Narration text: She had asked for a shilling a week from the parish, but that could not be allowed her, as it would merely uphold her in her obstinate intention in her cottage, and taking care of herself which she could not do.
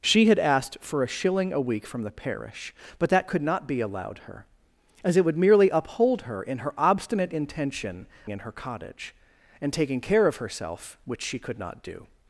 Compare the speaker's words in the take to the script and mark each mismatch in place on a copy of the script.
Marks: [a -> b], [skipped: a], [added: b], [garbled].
She had asked for a shilling a week from the parish, but that could not be allowed her, as it would merely uphold her in her obstinate intention in her cottage, and taking care of herself which she could not do.